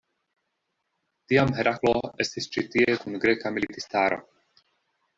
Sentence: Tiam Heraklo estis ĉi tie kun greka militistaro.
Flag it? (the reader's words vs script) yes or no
no